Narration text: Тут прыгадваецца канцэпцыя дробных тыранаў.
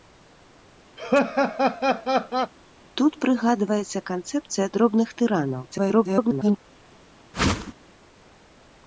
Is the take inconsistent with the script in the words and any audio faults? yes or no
yes